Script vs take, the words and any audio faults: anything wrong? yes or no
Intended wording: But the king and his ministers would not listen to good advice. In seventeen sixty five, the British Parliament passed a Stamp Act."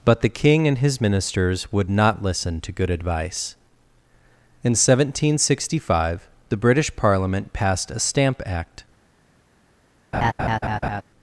yes